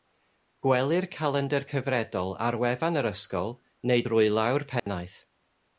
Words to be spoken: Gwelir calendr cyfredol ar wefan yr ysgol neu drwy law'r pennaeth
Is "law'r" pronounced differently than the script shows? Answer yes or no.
no